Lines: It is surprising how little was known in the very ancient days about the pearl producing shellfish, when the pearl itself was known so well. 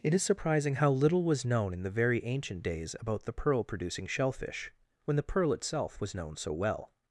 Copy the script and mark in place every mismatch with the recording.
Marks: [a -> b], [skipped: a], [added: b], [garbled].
It is surprising how little was known in the very ancient days about the pearl producing shellfish, when the pearl itself was known so well.